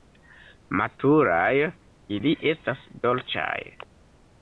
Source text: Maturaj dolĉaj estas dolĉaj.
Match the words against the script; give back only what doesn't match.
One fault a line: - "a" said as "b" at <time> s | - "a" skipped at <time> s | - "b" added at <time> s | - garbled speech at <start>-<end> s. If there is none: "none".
- "dolĉaj" said as "ili" at 2.2 s